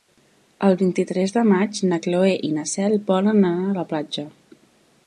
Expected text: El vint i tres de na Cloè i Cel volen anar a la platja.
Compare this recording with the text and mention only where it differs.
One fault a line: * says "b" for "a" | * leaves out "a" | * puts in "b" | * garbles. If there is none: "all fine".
* puts in "maig"
* puts in "na"